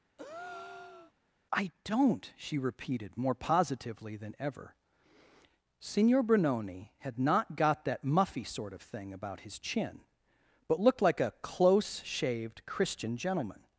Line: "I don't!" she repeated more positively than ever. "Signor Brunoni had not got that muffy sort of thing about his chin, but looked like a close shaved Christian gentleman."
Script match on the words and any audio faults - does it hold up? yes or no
no